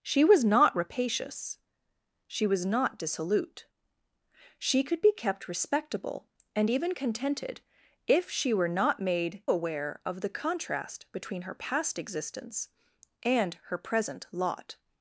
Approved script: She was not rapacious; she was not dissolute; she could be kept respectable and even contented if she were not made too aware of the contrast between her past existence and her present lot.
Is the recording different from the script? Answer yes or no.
yes